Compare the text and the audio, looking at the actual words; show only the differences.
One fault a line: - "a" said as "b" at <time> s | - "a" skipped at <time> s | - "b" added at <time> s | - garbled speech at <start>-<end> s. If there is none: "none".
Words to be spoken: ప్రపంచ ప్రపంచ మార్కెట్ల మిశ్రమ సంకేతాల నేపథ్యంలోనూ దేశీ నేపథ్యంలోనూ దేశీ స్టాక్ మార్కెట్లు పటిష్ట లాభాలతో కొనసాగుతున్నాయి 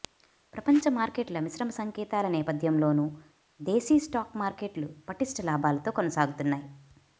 - "ప్రపంచ" skipped at 0.8 s
- "నేపథ్యంలోనూ దేశీ" skipped at 4.0 s